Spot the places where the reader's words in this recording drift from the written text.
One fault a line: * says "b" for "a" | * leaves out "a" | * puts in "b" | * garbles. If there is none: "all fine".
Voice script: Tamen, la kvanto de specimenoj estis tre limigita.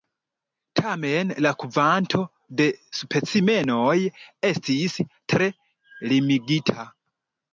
all fine